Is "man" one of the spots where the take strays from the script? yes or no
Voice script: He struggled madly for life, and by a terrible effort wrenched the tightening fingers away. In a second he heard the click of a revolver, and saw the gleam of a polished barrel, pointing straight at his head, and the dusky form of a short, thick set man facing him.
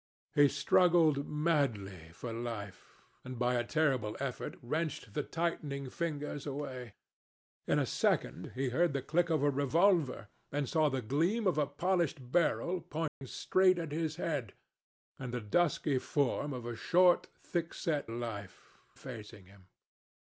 yes